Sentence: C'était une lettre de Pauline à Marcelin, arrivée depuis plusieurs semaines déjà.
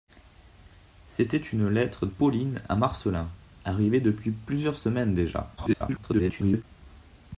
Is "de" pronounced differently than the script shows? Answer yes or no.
yes